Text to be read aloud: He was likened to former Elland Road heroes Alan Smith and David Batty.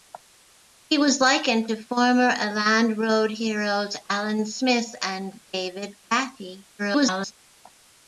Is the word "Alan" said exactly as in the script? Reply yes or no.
yes